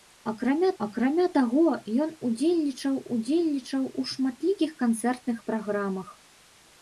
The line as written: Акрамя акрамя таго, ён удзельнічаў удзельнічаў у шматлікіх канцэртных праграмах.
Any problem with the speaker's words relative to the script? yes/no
no